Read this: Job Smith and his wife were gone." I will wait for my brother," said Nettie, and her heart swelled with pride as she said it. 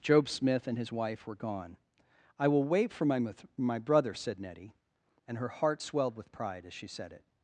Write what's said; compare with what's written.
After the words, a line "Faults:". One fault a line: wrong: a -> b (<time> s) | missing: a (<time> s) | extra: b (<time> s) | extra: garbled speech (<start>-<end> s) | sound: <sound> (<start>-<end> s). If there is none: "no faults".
Job Smith and his wife were gone." I will wait for my my brother," said Nettie, and her heart swelled with pride as she said it.
Faults:
extra: my (3.5 s)